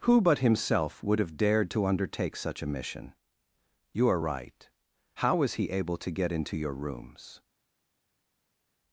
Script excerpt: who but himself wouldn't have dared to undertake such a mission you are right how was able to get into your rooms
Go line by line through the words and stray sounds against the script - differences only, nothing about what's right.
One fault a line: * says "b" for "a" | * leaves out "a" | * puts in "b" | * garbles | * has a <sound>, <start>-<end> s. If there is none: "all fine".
* says "would" for "wouldn't"
* puts in "he"